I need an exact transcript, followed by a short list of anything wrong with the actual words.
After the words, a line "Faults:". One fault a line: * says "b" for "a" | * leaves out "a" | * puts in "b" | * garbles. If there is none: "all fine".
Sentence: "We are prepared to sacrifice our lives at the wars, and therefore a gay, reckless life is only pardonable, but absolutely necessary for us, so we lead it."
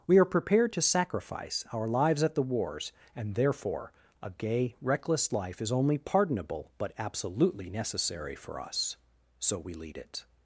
"We are prepared to sacrifice our lives at the wars, and therefore a gay, reckless life is only pardonable, but absolutely necessary for us, so we lead it."
Faults:
all fine